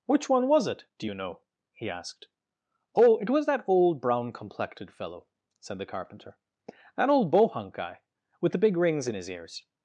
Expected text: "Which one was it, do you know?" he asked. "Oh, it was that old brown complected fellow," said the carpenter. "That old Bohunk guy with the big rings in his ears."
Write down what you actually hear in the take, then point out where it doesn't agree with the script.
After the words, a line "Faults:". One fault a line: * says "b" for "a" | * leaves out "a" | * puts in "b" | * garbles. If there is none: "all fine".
"Which one was it, do you know?" he asked. "Oh, it was that old brown complected fellow," said the carpenter. "That old Bohunk guy with the big rings in his ears."
Faults:
all fine